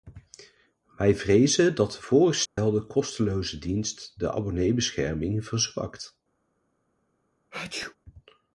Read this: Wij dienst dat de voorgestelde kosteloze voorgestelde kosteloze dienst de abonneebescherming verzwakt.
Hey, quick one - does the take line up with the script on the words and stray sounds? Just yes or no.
no